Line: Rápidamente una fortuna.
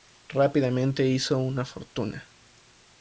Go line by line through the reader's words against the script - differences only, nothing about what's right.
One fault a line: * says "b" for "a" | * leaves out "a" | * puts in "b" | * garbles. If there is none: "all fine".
* puts in "hizo"